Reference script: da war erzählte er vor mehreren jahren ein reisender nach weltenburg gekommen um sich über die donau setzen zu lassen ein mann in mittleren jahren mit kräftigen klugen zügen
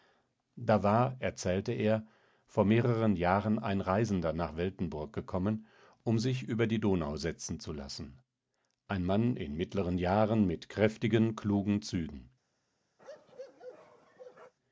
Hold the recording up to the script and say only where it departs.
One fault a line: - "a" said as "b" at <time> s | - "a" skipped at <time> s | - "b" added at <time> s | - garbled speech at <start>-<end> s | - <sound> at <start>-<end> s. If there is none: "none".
- bark at 13.0-14.5 s